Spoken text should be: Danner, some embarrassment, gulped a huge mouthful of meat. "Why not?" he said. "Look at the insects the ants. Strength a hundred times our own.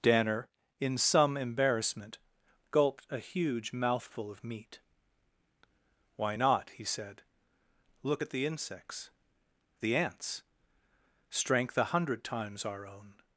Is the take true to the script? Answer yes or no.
no